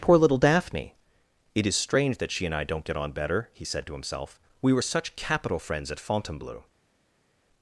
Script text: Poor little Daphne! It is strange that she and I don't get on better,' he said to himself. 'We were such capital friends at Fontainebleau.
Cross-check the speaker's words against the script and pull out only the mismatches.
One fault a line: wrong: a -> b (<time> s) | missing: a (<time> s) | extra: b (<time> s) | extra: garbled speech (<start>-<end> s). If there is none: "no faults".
no faults